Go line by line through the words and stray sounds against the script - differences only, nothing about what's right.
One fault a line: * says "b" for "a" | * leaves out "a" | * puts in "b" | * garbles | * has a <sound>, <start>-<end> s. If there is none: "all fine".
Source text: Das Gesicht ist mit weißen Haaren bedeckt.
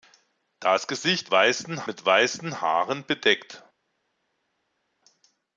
* says "weißen" for "ist"